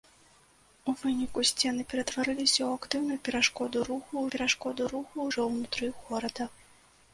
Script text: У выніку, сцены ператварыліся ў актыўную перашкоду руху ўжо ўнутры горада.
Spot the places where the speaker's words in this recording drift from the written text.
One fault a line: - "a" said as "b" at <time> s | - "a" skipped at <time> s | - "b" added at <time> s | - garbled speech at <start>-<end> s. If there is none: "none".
- "перашкоду руху" added at 4.4 s